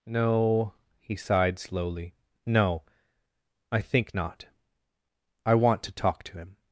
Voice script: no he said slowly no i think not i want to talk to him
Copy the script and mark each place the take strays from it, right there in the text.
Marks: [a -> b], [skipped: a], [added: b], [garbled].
no he [said -> sighed] slowly no i think not i want to talk to him